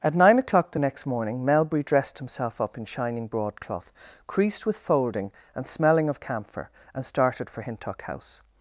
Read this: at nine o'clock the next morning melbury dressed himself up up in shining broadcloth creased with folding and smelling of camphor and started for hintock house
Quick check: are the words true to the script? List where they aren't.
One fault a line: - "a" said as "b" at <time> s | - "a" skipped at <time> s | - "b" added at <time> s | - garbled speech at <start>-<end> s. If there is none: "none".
- "up" skipped at 2.8 s